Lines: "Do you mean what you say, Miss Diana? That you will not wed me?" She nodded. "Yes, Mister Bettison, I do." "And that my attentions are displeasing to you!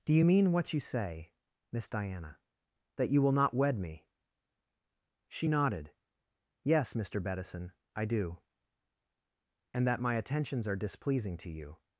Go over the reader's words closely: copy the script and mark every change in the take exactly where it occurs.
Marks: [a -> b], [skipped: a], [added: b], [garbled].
"Do you mean what you say, Miss Diana? That you will not wed me?" She nodded. "Yes, Mister Bettison, I do." "And that my attentions are displeasing to you!